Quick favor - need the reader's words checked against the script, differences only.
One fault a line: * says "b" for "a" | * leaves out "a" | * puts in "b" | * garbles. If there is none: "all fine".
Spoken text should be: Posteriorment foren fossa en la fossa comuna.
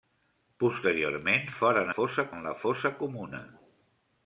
all fine